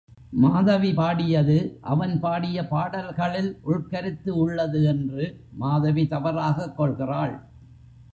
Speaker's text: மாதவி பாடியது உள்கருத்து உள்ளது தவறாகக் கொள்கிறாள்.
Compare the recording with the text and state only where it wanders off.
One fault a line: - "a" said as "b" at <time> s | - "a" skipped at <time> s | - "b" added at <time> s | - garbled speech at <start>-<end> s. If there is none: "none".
- "அவன் பாடிய பாடல்களில்" added at 1.8 s
- "என்று மாதவி" added at 4.8 s